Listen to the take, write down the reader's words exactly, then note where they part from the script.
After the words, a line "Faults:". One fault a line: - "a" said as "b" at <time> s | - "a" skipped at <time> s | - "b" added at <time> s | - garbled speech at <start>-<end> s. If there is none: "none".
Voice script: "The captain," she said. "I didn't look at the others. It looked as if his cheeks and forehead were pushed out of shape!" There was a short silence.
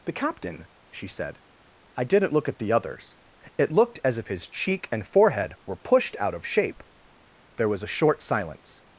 "The captain," she said. "I didn't look at the others. It looked as if his cheek and forehead were pushed out of shape!" There was a short silence.
Faults:
- "cheeks" said as "cheek" at 4.5 s